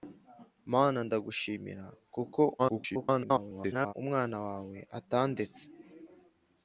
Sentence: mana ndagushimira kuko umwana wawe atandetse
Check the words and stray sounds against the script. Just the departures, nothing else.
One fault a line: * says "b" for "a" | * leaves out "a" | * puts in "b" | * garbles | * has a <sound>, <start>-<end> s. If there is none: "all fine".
* garbles